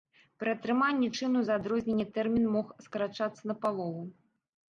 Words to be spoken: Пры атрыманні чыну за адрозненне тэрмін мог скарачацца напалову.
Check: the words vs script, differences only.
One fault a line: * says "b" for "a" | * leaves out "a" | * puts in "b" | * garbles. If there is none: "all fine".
all fine